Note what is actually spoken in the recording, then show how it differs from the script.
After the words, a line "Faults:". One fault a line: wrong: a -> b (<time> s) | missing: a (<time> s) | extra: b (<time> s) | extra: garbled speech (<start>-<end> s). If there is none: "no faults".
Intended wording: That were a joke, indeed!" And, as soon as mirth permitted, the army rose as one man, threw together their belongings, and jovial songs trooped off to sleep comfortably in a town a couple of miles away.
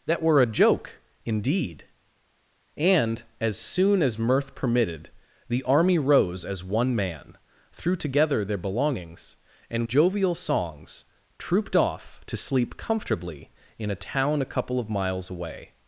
That were a joke, indeed!" And, as soon as mirth permitted, the army rose as one man, threw together their belongings, and jovial songs trooped off to sleep comfortably in a town a couple of miles away.
Faults:
no faults